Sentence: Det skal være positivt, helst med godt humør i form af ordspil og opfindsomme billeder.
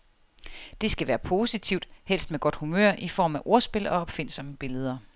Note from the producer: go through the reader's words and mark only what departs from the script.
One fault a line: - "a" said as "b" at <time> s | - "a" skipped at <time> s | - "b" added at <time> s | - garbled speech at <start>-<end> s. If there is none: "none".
none